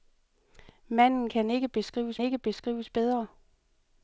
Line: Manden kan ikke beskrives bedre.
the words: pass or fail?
fail